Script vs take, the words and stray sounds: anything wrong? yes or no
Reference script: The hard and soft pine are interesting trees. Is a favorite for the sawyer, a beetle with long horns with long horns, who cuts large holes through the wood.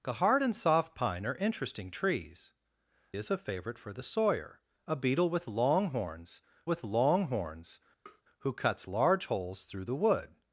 yes